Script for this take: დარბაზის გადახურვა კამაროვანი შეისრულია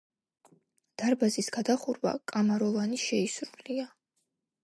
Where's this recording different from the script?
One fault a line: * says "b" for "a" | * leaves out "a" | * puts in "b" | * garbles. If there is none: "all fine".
all fine